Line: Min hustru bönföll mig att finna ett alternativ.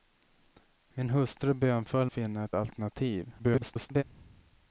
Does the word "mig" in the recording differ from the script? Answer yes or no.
yes